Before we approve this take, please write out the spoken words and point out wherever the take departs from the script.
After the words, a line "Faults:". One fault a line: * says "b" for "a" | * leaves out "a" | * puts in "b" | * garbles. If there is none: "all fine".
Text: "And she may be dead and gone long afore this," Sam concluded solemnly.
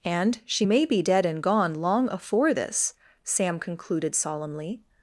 "And she may be dead and gone long afore this," Sam concluded solemnly.
Faults:
all fine